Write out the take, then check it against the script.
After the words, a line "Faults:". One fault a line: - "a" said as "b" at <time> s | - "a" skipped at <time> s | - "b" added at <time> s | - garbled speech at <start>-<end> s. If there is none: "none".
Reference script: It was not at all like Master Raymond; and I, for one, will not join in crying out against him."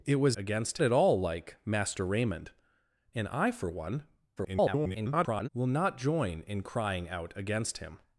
It was against at all like Master Raymond; and I, for one, [garbled] will not join in crying out against him."
Faults:
- "not" said as "against" at 0.4 s
- garbled speech at 4.4-5.5 s